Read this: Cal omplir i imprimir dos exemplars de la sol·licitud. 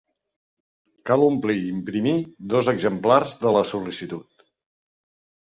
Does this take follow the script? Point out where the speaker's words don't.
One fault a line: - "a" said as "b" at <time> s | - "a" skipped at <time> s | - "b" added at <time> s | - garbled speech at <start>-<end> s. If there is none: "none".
none